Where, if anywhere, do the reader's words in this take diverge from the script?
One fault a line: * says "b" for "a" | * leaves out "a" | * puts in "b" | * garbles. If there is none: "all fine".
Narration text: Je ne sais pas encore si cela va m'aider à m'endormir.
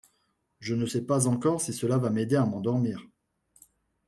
all fine